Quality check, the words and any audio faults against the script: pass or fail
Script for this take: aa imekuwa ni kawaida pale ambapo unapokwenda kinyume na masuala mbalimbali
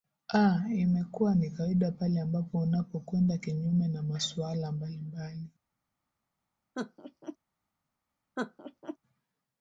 fail